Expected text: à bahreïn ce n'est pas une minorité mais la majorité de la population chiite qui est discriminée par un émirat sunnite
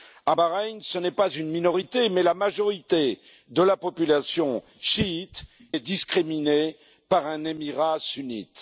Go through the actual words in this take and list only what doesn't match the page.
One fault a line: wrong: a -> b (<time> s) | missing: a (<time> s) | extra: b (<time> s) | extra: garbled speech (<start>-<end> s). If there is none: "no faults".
missing: qui (5.4 s)